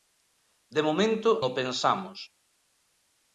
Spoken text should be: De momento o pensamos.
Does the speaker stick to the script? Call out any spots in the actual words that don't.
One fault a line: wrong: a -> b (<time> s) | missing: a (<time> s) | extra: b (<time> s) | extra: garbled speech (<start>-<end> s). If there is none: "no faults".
no faults